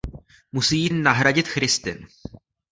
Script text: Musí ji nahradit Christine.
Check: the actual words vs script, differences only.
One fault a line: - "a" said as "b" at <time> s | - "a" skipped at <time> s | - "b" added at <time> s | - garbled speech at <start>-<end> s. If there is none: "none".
none